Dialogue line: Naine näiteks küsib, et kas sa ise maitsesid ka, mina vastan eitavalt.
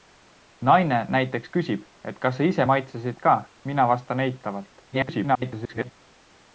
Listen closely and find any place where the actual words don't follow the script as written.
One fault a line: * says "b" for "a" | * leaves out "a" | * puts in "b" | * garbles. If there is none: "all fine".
* garbles